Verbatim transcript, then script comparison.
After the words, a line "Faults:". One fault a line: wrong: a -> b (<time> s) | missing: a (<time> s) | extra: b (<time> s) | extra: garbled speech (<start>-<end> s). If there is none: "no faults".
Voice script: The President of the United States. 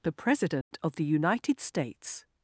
The President of the United States.
Faults:
no faults